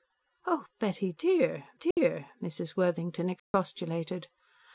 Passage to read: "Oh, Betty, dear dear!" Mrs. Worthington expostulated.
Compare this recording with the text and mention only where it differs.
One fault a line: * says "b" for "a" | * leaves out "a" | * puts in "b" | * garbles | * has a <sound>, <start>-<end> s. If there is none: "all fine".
* has a dropout, 1.9-2.0 s
* has a dropout, 3.4-3.5 s